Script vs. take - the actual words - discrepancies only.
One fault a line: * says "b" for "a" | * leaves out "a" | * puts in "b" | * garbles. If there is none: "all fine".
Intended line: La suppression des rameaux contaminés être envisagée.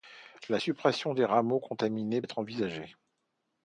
all fine